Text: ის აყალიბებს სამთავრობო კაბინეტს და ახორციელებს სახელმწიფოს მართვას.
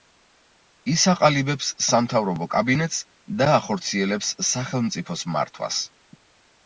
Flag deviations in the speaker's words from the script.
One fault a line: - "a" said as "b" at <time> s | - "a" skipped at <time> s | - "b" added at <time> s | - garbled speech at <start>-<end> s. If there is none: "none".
none